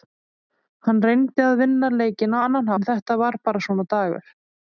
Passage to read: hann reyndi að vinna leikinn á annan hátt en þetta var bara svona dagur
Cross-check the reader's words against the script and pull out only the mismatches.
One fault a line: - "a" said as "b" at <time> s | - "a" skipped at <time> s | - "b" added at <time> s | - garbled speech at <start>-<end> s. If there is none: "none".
- "hátt" skipped at 2.7 s